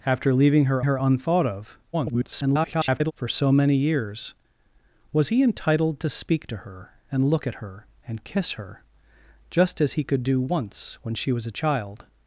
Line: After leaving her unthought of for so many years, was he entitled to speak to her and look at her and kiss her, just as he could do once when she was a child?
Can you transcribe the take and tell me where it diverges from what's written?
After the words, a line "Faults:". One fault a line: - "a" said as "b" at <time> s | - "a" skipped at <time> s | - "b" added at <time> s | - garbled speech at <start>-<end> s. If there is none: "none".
After leaving her her unthought of [garbled] for so many years, was he entitled to speak to her and look at her and kiss her, just as he could do once when she was a child?
Faults:
- "her" added at 0.8 s
- garbled speech at 1.9-3.1 s